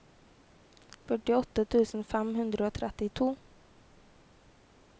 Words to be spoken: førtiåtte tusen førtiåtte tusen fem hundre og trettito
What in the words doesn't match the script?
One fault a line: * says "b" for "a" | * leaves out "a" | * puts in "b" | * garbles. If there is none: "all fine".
* leaves out "førtiåtte tusen"